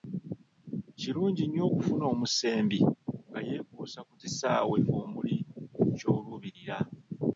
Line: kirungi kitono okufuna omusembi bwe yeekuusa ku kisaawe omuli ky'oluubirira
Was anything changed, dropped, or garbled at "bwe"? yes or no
yes